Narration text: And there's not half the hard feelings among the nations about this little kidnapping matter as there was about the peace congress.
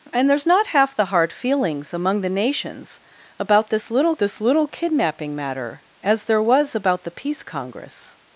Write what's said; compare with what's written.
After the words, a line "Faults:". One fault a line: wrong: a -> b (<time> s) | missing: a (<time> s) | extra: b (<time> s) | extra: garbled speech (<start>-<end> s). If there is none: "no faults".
And there's not half the hard feelings among the nations about this little this little kidnapping matter as there was about the peace congress.
Faults:
extra: this little (4.2 s)